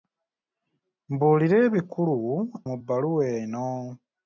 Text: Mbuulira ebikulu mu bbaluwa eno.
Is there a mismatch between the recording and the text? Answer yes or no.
no